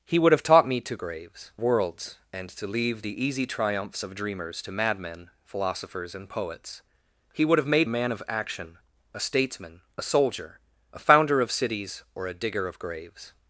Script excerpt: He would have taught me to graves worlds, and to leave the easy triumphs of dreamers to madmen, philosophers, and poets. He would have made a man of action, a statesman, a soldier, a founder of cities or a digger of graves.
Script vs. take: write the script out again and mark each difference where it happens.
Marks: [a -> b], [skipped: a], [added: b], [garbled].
He would have taught me to graves worlds, and to leave the easy triumphs of dreamers to madmen, philosophers, and poets. He would have made a man of action, a statesman, a soldier, a founder of cities or a digger of graves.